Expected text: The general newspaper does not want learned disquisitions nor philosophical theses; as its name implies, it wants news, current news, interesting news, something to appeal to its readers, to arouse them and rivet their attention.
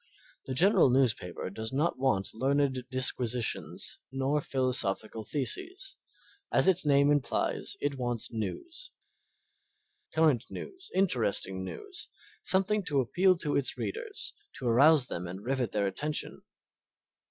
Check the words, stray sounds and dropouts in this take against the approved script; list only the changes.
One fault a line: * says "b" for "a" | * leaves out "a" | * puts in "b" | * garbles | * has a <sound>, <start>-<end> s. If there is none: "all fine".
all fine